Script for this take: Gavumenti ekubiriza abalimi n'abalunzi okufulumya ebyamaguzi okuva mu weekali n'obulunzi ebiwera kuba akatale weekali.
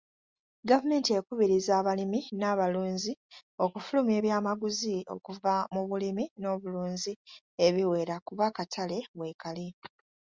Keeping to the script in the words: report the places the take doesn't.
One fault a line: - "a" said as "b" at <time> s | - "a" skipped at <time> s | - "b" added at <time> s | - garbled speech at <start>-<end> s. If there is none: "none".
- "weekali" said as "bulimi" at 5.9 s